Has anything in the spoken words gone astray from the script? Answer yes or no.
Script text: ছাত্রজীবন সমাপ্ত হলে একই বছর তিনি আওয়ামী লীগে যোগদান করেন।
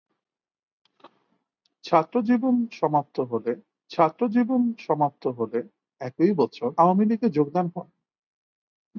yes